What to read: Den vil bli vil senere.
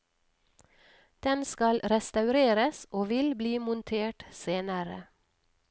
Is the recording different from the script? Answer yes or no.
yes